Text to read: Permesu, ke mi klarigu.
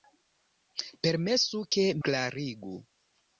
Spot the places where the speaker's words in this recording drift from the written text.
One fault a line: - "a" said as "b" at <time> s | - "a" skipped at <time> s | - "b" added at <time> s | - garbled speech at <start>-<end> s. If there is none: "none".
- "mi" skipped at 1.9 s